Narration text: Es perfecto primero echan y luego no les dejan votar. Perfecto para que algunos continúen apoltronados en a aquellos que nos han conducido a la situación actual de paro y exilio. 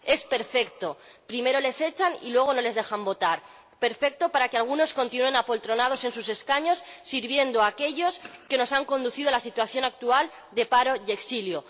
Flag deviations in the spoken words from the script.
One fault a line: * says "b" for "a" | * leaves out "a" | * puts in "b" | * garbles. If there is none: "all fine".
* puts in "les"
* puts in "sus escaños sirviendo"